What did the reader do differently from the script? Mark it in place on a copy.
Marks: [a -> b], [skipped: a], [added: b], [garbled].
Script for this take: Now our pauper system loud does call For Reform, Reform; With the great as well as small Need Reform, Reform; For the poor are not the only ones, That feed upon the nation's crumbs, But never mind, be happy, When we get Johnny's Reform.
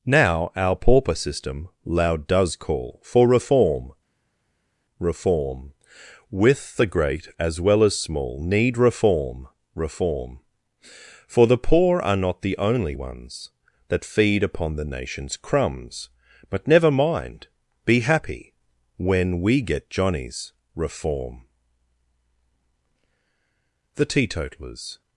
Now our pauper system loud does call For Reform, Reform; With the great as well as small Need Reform, Reform; For the poor are not the only ones, That feed upon the nation's crumbs, But never mind, be happy, When we get Johnny's Reform. [added: The teetotalers]